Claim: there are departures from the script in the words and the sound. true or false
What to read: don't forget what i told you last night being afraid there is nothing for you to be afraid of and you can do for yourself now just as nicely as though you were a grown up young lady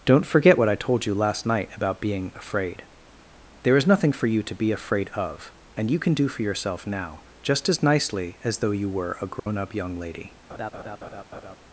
true